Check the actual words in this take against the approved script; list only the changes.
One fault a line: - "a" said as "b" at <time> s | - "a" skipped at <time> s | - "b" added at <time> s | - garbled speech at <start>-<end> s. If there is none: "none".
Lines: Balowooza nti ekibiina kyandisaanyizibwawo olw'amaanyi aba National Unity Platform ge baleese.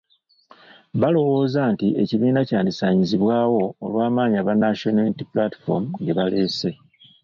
none